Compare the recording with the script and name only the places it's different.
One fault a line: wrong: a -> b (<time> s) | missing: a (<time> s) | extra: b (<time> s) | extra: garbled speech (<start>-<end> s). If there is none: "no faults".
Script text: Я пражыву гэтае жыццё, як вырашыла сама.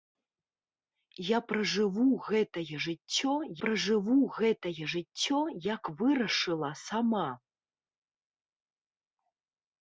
extra: пражыву гэтае жыццё (3.6 s)